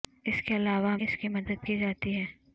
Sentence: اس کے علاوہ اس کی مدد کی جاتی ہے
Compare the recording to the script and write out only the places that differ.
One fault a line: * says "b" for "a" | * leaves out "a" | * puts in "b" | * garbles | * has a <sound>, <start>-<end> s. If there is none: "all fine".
all fine